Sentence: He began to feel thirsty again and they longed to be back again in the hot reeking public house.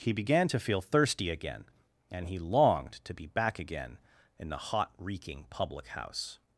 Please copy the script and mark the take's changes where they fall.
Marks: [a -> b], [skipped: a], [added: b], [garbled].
He began to feel thirsty again and [they -> he] longed to be back again in the hot reeking public house.